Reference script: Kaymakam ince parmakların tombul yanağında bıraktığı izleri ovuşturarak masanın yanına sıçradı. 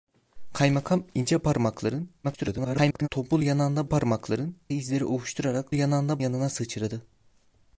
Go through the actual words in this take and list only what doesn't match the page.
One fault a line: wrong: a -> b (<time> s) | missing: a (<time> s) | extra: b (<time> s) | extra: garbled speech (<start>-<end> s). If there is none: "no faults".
extra: garbled speech (2.2-3.1 s)
wrong: bıraktığı -> parmakların (3.9 s)
wrong: masanın -> yanağında (5.7 s)